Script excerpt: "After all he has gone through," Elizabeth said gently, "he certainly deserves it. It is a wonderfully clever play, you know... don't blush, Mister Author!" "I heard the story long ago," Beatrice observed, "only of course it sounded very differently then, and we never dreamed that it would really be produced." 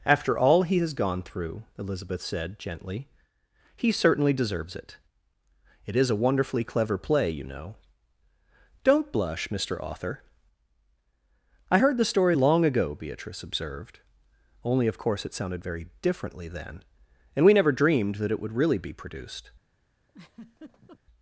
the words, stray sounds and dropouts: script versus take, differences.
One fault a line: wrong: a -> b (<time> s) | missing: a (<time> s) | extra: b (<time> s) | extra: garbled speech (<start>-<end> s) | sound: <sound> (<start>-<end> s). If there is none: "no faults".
sound: laugh (20.1-21.0 s)